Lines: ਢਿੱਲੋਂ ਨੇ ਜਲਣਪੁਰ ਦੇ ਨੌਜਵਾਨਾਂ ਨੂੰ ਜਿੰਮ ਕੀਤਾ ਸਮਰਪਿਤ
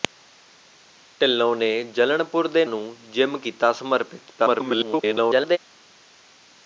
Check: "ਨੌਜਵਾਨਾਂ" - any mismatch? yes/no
yes